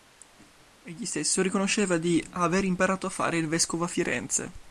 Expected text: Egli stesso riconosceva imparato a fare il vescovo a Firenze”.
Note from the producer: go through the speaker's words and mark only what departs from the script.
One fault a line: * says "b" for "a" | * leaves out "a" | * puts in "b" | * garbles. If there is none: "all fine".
* puts in "di aver"